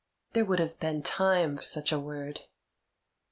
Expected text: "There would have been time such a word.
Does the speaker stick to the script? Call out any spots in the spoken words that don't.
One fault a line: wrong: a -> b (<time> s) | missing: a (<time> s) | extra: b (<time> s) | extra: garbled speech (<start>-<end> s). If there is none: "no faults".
no faults